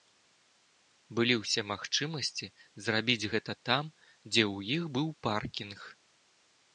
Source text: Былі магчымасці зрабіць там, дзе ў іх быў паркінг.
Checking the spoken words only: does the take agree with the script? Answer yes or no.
no